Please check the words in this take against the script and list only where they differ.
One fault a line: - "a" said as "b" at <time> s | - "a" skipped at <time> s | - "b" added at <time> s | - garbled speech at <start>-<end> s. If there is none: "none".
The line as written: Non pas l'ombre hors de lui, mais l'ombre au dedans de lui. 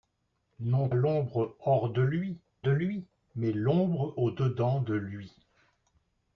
- "pas" skipped at 0.9 s
- "de lui" added at 2.6 s